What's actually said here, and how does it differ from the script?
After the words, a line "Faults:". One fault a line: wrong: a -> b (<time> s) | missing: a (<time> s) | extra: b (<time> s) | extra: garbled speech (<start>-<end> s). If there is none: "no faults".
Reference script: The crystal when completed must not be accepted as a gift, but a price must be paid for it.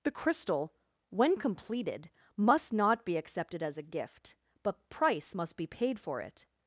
The crystal when completed must not be accepted as a gift, but price must be paid for it.
Faults:
missing: a (4.9 s)